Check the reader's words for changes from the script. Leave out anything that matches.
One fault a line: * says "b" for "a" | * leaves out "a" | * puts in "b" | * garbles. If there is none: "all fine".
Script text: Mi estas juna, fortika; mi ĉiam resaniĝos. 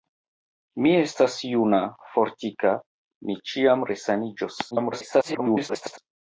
* garbles